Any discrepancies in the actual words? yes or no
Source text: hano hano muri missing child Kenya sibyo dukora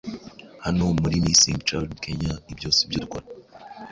yes